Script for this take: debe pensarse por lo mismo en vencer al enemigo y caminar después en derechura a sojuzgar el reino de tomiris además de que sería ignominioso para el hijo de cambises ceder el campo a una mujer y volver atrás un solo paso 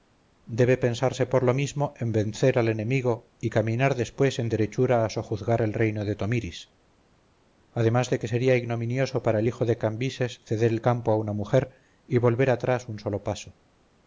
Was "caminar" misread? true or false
false